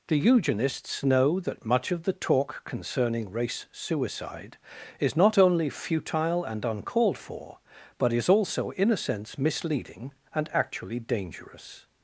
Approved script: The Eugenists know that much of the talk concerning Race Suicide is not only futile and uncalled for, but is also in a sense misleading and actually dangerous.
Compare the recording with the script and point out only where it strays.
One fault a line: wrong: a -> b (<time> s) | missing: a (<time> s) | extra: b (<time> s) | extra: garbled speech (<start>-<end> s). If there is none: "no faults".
no faults